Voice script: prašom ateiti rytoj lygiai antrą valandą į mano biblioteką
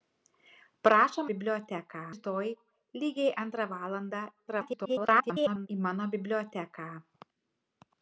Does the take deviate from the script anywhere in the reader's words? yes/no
yes